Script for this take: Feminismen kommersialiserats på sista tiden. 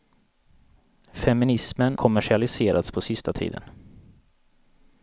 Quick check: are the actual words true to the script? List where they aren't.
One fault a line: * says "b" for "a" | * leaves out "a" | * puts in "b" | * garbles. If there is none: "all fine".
all fine